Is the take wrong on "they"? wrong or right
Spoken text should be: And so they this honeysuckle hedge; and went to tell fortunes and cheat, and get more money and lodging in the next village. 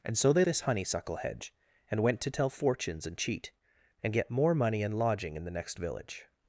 right